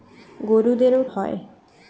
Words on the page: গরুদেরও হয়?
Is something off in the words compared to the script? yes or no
no